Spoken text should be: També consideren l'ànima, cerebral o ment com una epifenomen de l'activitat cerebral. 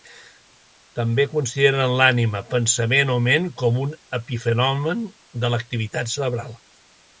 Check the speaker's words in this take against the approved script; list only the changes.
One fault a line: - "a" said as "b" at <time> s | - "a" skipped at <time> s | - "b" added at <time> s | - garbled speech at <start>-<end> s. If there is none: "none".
- "cerebral" said as "pensament" at 2.5 s
- "una" said as "un" at 3.9 s